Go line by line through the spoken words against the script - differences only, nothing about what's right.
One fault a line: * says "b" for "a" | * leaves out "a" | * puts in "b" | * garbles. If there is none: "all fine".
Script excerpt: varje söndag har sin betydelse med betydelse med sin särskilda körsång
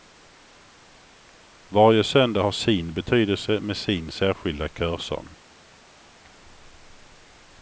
* leaves out "betydelse med"